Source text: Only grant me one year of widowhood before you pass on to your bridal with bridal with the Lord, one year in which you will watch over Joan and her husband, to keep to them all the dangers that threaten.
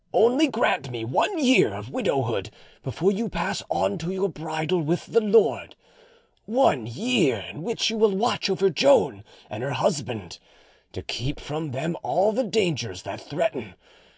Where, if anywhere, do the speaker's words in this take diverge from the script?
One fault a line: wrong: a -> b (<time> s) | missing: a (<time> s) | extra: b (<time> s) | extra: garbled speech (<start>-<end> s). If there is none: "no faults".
missing: bridal with (5.1 s)
wrong: to -> from (11.4 s)